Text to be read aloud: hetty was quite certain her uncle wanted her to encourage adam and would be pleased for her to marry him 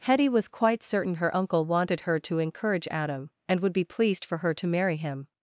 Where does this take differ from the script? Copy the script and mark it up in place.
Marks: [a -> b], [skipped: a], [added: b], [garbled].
hetty was quite certain her uncle wanted her to encourage adam and would be pleased for her to marry him